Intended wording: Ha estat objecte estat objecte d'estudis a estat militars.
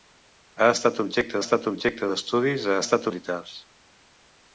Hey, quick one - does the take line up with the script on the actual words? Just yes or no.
yes